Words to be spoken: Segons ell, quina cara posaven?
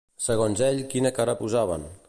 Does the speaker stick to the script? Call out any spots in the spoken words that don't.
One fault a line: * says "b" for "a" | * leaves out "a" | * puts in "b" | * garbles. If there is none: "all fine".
all fine